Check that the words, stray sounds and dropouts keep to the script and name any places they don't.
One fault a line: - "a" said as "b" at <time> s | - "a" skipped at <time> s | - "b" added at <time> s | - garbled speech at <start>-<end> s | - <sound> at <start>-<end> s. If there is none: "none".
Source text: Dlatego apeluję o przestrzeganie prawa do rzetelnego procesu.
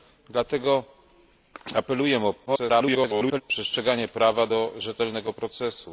- garbled speech at 2.5-3.4 s